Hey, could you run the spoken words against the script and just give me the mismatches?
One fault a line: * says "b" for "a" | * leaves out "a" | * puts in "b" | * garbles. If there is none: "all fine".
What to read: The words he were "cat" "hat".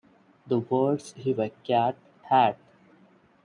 all fine